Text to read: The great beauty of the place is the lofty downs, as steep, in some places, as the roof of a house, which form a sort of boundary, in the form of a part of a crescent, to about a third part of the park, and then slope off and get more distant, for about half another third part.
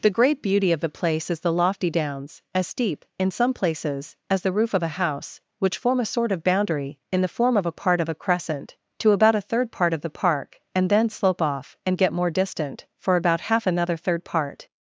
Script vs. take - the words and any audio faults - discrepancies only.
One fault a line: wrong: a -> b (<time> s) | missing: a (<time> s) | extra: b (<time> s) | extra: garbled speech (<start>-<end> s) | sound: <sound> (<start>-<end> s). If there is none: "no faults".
no faults